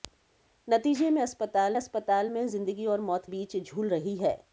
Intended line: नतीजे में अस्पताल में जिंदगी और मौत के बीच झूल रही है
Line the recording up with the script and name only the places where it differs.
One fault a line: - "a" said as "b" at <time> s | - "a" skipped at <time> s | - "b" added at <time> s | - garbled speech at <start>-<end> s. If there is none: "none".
- "अस्पताल" added at 1.8 s
- "के" skipped at 3.3 s